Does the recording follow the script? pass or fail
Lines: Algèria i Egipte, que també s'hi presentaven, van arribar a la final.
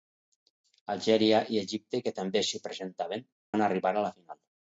pass